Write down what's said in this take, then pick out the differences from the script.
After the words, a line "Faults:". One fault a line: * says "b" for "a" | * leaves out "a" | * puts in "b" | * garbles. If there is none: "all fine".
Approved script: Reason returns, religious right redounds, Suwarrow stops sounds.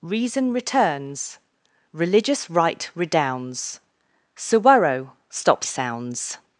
Reason returns, religious right redounds, Suwarrow stops sounds.
Faults:
all fine